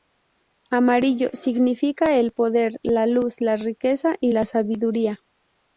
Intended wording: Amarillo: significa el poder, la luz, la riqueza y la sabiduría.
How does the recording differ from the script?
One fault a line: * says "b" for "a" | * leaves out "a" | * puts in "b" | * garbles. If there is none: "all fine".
all fine